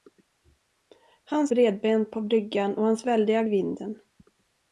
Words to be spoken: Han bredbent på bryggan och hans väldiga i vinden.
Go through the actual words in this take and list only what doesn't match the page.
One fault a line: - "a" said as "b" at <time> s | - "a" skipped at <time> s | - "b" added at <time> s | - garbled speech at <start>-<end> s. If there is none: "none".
none